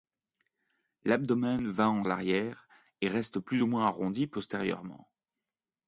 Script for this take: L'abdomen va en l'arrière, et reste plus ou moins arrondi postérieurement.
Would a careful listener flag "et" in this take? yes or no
no